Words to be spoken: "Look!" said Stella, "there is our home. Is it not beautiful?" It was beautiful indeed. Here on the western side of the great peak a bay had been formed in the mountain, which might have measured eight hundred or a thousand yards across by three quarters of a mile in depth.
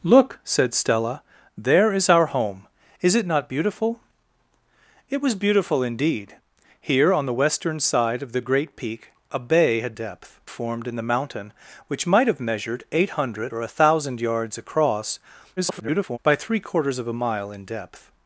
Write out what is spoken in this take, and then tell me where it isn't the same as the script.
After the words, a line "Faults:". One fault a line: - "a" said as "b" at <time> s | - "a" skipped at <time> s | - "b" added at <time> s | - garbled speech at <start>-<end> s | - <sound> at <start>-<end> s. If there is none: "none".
"Look!" said Stella, "there is our home. Is it not beautiful?" It was beautiful indeed. Here on the western side of the great peak a bay had depth formed in the mountain, which might have measured eight hundred or a thousand yards across [garbled] by three quarters of a mile in depth.
Faults:
- "been" said as "depth" at 9.9 s
- garbled speech at 15.6-16.2 s